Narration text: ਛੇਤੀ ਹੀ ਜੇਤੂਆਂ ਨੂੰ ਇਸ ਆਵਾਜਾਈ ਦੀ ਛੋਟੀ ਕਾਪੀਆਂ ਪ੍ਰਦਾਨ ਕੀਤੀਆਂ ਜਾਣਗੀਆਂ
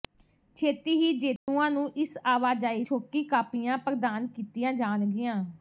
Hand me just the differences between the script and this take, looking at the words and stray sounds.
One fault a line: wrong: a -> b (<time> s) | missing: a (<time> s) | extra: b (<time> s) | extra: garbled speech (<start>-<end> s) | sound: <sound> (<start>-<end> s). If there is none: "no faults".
sound: dropout (1.4-1.5 s)
missing: ਦੀ (2.8 s)